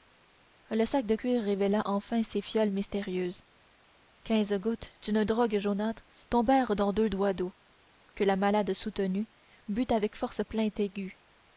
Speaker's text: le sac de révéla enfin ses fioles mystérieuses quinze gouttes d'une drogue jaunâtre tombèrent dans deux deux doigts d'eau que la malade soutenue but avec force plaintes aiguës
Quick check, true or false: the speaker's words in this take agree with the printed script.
false